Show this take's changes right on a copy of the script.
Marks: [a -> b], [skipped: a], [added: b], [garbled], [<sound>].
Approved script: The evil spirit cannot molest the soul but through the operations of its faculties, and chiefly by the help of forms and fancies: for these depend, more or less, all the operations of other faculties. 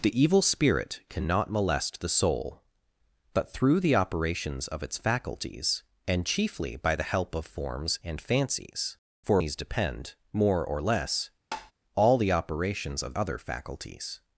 The evil spirit cannot molest the soul but through the operations of its faculties, and chiefly by the help of forms and fancies: for these depend, more or less, [tap] all the operations of other faculties.